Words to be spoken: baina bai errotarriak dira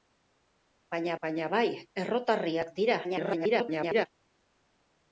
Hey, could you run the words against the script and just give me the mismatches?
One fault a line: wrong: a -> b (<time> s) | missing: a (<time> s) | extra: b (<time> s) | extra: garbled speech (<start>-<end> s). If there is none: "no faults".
extra: baina (1.3 s)
extra: garbled speech (3.0-4.1 s)